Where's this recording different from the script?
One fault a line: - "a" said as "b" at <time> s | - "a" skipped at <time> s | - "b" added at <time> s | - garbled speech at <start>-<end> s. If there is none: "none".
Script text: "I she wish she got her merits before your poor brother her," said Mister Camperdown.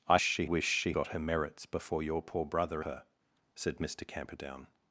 none